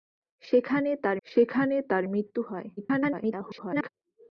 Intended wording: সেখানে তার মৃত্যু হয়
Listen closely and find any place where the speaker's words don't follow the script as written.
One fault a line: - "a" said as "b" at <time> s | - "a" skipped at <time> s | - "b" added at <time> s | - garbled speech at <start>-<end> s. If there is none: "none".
- "সেখানে তার" added at 1.3 s
- garbled speech at 2.8-3.9 s